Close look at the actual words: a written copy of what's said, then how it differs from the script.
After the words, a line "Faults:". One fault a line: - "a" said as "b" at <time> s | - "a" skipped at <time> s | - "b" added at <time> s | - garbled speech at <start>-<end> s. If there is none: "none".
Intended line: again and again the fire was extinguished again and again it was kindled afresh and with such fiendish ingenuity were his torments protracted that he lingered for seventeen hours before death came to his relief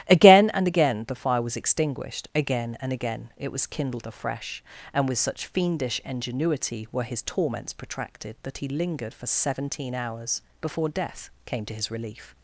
again and again the fire was extinguished again and again it was kindled afresh and with such fiendish ingenuity were his torments protracted that he lingered for seventeen hours before death came to his relief
Faults:
none